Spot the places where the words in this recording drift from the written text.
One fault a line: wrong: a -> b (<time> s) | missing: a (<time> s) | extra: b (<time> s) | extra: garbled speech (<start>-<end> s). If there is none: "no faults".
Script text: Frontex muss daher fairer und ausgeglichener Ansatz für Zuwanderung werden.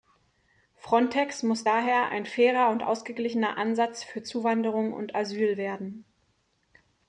extra: ein (2.1 s)
extra: und Asyl (4.9 s)